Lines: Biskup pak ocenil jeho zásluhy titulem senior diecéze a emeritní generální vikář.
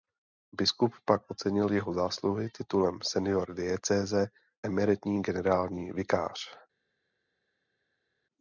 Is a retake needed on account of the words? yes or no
yes